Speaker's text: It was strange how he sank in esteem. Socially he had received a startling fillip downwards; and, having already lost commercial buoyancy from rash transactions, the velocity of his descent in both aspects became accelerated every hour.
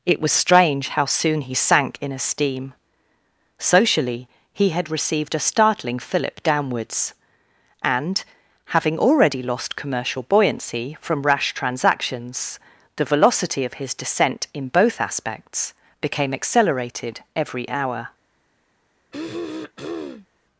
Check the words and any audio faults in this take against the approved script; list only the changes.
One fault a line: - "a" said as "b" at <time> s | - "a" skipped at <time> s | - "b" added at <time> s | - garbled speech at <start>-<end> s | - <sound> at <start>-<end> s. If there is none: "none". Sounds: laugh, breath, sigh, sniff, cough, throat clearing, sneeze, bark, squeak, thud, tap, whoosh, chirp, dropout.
- "soon" added at 1.1 s
- throat clearing at 19.1-20.3 s